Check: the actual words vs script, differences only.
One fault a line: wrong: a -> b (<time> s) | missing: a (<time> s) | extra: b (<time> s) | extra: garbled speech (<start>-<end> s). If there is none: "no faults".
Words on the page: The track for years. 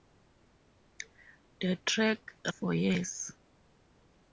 no faults